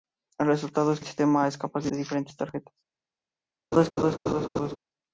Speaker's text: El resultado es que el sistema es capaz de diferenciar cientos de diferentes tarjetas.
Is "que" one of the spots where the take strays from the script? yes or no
yes